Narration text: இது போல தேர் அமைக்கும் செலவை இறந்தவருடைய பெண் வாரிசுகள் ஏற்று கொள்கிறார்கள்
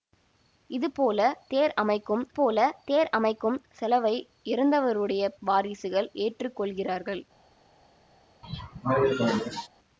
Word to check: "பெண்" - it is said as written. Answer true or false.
false